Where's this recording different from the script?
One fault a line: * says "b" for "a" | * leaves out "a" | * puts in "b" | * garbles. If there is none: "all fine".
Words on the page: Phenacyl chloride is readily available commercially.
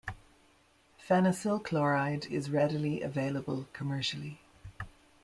all fine